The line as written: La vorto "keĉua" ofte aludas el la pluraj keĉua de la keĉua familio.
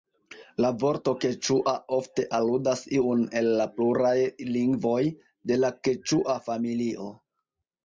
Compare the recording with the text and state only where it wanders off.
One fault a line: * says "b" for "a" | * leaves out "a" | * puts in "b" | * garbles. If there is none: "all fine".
* puts in "iun"
* says "lingvoj" for "keĉua"